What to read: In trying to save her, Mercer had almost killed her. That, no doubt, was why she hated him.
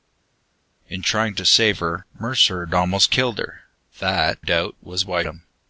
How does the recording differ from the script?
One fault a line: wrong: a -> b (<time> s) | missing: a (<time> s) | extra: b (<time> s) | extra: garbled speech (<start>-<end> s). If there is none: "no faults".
missing: no (4.4 s)
missing: she hated (5.2 s)